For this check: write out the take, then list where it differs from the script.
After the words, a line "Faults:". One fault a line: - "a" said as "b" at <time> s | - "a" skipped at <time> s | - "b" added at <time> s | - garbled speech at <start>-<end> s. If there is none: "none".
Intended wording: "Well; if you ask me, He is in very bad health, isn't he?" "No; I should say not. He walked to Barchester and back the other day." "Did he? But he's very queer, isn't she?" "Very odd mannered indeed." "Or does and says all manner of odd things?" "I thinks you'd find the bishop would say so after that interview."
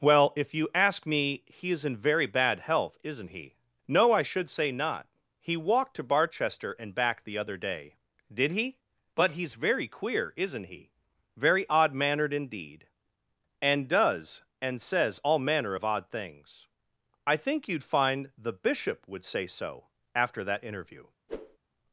"Well; if you ask me, He is in very bad health, isn't he?" "No; I should say not. He walked to Barchester and back the other day." "Did he? But he's very queer, isn't he?" "Very odd mannered indeed." "And does and says all manner of odd things?" "I think you'd find the bishop would say so after that interview."
Faults:
- "she" said as "he" at 10.6 s
- "Or" said as "And" at 13.6 s
- "thinks" said as "think" at 17.4 s